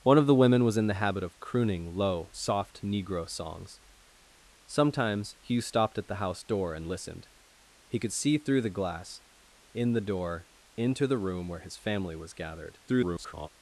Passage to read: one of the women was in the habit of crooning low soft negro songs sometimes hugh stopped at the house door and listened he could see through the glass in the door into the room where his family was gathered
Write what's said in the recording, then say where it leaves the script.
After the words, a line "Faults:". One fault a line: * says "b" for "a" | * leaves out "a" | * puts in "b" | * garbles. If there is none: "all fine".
one of the women was in the habit of crooning low soft negro songs sometimes hugh stopped at the house door and listened he could see through the glass in the door into the room where his family was gathered [garbled]
Faults:
* garbles